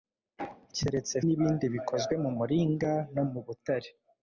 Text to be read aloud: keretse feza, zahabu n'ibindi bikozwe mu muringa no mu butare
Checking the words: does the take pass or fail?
fail